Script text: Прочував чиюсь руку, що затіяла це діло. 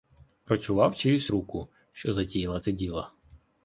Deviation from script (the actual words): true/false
false